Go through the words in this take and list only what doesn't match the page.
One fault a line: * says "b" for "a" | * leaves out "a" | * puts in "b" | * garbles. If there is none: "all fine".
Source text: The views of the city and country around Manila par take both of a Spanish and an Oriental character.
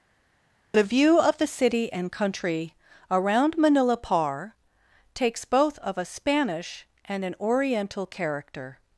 * says "view" for "views"
* says "takes" for "take"